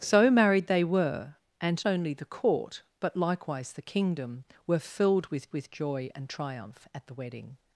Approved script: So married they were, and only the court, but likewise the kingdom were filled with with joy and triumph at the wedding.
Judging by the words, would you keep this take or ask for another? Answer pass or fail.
pass